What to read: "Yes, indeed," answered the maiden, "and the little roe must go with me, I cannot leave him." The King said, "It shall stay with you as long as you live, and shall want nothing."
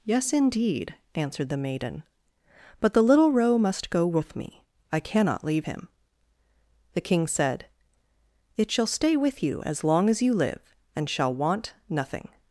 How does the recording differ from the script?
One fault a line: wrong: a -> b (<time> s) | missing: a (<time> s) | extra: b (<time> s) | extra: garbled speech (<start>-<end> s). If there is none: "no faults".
wrong: and -> but (2.8 s)